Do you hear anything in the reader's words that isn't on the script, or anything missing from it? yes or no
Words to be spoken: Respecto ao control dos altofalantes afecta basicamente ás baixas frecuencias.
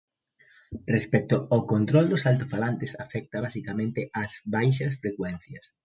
no